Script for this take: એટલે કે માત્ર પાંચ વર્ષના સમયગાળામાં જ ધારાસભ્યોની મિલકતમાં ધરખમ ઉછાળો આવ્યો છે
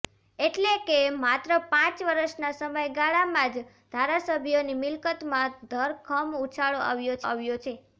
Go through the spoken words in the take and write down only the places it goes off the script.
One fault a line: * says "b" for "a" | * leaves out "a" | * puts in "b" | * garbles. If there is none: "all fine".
* puts in "આવ્યો"